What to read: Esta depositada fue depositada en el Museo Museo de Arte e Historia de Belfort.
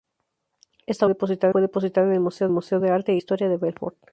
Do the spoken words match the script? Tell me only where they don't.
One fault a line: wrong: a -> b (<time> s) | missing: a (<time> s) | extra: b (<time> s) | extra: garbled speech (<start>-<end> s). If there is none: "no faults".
no faults